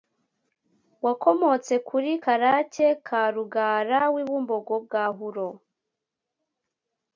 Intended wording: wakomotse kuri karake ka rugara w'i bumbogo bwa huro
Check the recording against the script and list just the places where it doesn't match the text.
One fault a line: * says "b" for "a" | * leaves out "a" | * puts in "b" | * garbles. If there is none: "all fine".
all fine